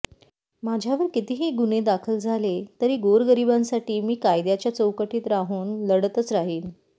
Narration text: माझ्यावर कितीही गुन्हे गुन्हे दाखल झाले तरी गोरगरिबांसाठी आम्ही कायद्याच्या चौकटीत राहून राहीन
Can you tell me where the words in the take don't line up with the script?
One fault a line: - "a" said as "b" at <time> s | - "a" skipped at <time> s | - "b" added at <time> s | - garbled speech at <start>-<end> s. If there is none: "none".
- "गुन्हे" skipped at 1.8 s
- "आम्ही" said as "मी" at 4.0 s
- "लढतच" added at 5.9 s